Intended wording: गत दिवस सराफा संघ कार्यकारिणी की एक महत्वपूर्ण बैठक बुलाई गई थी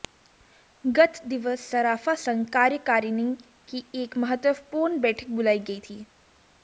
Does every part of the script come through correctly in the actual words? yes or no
yes